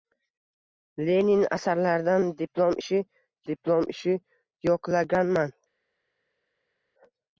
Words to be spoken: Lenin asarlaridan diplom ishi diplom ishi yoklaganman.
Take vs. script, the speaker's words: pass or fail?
pass